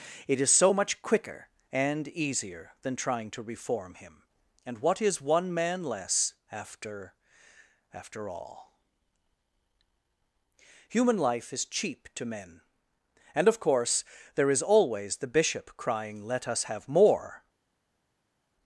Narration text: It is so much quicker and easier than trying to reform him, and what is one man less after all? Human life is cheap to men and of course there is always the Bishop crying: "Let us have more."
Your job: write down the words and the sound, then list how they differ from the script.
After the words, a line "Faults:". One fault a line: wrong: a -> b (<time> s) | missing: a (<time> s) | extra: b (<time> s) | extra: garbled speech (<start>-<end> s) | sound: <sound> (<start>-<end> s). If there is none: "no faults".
It is so much quicker and easier than trying to reform him, and what is one man less after after all? Human life is cheap to men and of course there is always the Bishop crying: "Let us have more."
Faults:
extra: after (7.9 s)